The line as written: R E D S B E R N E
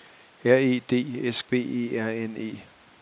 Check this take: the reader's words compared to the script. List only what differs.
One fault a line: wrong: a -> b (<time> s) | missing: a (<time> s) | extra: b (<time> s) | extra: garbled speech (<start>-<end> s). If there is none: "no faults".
no faults